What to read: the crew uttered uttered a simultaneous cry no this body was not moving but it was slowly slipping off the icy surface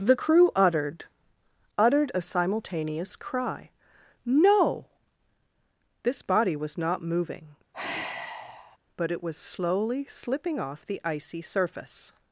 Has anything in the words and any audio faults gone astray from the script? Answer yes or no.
yes